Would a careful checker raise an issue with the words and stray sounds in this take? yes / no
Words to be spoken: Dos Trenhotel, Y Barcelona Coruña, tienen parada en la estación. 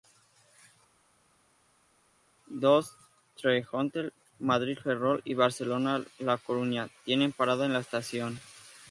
yes